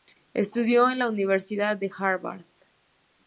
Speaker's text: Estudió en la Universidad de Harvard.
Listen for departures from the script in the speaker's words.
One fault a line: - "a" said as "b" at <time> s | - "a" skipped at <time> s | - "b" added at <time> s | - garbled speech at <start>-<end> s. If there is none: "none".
none